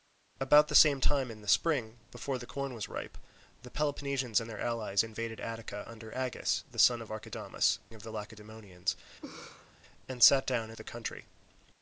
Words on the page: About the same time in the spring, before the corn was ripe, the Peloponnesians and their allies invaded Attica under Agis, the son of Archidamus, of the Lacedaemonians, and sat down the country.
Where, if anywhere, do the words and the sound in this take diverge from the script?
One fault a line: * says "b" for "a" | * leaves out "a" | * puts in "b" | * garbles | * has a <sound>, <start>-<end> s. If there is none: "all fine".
* has a laugh, 9.2-9.7 s